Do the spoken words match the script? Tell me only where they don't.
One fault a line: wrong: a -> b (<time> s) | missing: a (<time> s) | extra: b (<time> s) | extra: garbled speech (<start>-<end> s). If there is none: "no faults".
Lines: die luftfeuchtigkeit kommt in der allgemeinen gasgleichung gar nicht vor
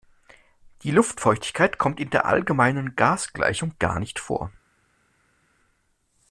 no faults